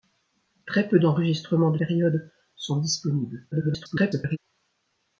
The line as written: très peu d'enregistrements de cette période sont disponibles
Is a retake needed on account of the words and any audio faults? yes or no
yes